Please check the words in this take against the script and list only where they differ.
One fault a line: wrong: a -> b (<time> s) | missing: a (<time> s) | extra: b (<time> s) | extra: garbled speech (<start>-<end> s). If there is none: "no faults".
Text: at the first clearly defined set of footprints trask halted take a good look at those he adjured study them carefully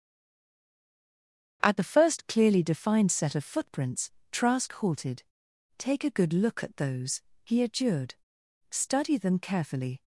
no faults